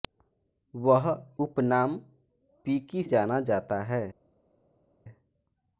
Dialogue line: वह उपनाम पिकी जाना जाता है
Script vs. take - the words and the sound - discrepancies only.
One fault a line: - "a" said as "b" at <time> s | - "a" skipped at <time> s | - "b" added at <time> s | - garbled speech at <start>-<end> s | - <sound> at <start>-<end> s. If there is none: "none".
none